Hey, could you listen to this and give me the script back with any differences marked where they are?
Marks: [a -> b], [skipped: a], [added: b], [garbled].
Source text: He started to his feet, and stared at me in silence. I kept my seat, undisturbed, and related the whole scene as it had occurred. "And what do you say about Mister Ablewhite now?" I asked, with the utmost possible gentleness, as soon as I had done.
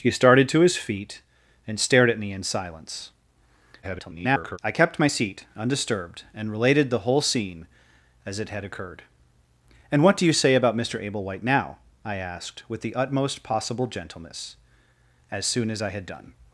He started to his feet, and stared at me in silence. [garbled] I kept my seat, undisturbed, and related the whole scene as it had occurred. "And what do you say about Mister Ablewhite now?" I asked, with the utmost possible gentleness, as soon as I had done.